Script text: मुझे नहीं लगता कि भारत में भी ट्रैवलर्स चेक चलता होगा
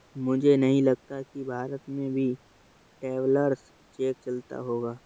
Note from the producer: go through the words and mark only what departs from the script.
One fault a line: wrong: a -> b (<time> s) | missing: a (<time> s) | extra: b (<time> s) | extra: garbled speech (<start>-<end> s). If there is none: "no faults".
no faults